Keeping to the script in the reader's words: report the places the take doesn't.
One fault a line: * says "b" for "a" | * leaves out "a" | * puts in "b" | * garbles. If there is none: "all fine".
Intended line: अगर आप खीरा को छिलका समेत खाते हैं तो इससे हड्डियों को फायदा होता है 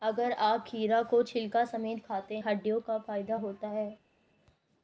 * leaves out "हैं तो इससे"